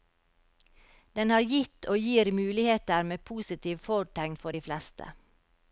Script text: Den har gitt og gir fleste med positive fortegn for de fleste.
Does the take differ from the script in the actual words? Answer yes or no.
yes